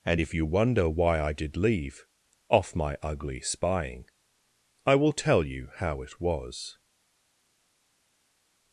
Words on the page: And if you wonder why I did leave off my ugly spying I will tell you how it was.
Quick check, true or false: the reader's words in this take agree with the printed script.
true